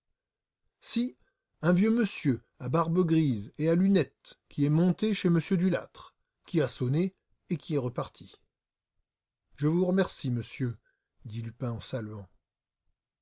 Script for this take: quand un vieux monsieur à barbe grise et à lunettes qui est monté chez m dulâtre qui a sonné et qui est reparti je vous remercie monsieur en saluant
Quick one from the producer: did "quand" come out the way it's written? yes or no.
no